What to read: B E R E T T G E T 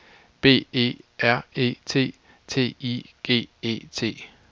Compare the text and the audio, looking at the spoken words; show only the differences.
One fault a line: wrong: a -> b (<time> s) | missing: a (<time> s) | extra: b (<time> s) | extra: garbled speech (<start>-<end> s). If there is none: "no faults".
extra: I (2.8 s)